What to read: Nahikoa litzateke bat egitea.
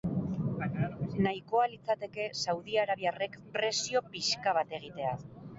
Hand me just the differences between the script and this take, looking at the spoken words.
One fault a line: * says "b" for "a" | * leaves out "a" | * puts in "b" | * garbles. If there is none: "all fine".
* puts in "saudiarabiarrek presio pixka"